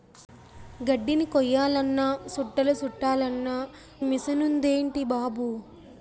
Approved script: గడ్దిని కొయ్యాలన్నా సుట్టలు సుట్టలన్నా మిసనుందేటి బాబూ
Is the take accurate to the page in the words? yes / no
yes